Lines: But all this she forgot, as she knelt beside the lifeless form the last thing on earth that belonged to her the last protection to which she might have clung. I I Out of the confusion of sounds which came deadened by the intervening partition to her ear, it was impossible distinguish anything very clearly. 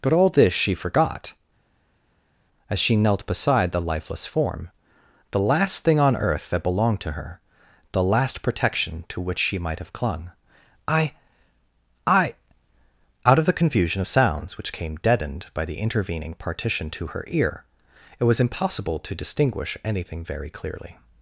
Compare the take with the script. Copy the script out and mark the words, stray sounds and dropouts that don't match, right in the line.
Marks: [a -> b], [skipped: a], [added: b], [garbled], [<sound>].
But all this she forgot, as she knelt beside the lifeless form the last thing on earth that belonged to her the last protection to which she might have clung. I I Out of the confusion of sounds which came deadened by the intervening partition to her ear, it was impossible [added: to] distinguish anything very clearly.